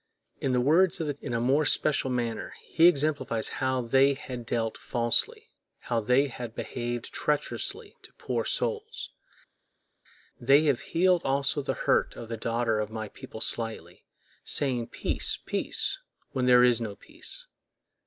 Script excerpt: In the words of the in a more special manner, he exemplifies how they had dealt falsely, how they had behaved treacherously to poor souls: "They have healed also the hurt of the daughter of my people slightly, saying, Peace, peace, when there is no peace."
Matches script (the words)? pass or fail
pass